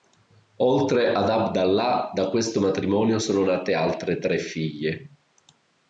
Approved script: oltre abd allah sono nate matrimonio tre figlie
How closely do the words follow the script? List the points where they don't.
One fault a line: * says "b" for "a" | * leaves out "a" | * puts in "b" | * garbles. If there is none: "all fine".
* puts in "ad"
* puts in "da questo matrimonio"
* says "altre" for "matrimonio"